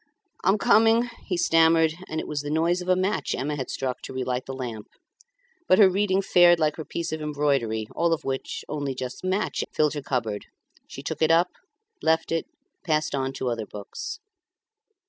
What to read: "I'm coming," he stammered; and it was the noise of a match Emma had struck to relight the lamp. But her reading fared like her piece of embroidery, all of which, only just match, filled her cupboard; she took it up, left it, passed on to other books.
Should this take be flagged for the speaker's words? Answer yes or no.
no